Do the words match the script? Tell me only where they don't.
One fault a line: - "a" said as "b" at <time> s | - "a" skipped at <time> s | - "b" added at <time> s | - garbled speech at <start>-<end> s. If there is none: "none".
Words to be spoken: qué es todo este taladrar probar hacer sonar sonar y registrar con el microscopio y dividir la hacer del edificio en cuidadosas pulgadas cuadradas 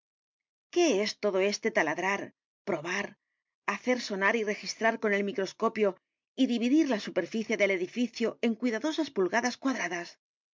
- "sonar" skipped at 4.4 s
- "hacer" said as "superficie" at 7.0 s